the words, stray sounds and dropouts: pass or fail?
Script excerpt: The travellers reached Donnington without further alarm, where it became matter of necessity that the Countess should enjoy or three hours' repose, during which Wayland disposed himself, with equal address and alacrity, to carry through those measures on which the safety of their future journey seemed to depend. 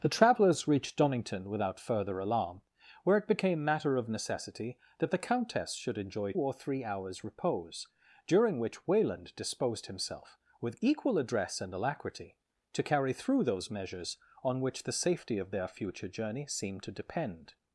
pass